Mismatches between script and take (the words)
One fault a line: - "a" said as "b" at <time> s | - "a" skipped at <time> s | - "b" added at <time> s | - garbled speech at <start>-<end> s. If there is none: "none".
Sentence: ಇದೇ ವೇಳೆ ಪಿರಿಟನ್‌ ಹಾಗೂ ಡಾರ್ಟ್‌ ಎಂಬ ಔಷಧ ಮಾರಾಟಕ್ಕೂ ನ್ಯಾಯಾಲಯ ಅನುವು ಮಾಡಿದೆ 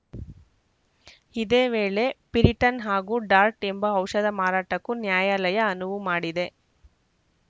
none